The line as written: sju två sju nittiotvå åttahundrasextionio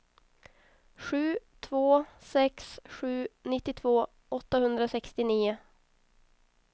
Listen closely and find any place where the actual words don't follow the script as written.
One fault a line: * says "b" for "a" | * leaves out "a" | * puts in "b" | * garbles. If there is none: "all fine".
* puts in "sex"